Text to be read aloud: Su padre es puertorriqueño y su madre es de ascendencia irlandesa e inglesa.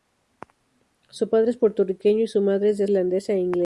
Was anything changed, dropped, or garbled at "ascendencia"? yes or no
yes